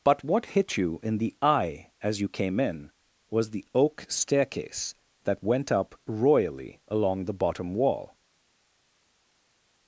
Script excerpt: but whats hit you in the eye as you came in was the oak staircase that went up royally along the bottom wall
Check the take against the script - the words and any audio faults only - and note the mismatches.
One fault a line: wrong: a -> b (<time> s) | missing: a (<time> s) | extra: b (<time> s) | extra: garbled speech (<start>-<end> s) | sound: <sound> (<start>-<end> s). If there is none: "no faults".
wrong: whats -> what (0.2 s)